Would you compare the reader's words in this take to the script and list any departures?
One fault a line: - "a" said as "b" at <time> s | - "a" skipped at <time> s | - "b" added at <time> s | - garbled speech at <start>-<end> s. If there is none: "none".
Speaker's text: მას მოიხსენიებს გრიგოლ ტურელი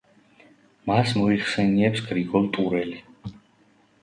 none